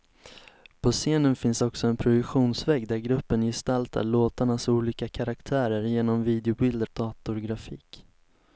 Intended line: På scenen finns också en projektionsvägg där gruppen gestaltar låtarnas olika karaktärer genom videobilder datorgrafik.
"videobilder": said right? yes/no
yes